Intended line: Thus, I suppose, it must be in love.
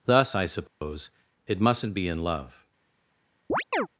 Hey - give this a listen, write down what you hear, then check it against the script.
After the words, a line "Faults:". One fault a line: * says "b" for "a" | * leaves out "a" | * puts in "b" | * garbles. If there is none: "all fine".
Thus, I suppose, it mustn't be in love.
Faults:
* says "mustn't" for "must"